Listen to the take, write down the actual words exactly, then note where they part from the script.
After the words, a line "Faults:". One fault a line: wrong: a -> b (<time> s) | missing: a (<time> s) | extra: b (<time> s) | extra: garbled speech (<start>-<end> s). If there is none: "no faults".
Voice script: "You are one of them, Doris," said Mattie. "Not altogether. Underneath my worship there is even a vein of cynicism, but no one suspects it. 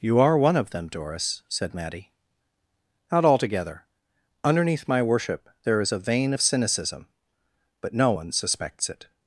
"You are one of them, Doris," said Mattie. "Not altogether. Underneath my worship there is a vein of cynicism, but no one suspects it.
Faults:
missing: even (5.9 s)